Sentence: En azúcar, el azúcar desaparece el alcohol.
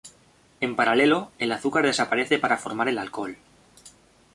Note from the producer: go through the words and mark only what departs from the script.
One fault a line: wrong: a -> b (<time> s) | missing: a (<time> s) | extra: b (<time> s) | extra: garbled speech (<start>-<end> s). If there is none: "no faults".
wrong: azúcar -> paralelo (0.8 s)
extra: para formar (2.4 s)